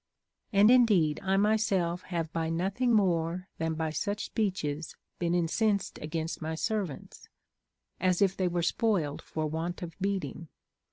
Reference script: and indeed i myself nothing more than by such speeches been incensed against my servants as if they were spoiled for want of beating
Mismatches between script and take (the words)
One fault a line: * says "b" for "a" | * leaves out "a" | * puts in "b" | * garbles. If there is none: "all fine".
* puts in "have by"